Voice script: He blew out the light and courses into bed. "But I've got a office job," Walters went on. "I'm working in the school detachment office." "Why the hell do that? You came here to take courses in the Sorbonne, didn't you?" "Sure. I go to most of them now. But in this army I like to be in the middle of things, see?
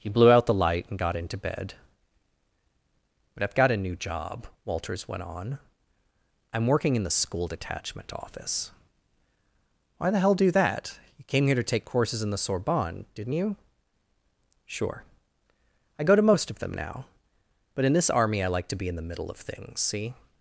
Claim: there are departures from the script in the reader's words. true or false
true